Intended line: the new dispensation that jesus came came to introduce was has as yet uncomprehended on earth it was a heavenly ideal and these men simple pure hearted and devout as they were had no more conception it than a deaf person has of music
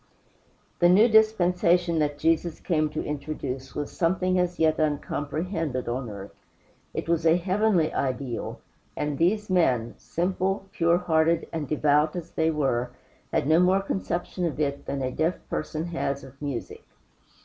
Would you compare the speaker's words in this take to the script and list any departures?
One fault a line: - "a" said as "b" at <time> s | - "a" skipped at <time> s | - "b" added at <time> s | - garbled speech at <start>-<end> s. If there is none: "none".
- "came" skipped at 2.9 s
- "has" said as "something" at 3.9 s
- "of" added at 14.5 s